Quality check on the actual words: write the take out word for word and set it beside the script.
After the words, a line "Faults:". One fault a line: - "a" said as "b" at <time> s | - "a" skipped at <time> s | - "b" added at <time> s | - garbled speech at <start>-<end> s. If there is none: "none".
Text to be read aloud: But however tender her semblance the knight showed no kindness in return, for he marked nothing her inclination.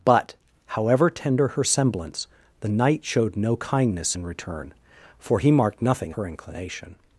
But however tender her semblance the knight showed no kindness in return, for he marked nothing her inclination.
Faults:
none